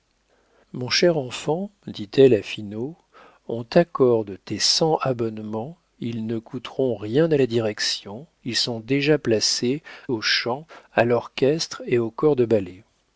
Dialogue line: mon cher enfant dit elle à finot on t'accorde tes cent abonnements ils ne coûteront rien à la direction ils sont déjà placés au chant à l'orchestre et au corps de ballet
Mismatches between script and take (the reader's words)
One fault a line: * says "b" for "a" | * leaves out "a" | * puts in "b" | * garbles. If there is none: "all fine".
all fine